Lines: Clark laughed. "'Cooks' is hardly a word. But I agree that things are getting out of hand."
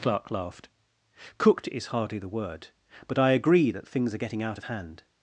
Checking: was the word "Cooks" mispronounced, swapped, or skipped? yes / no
yes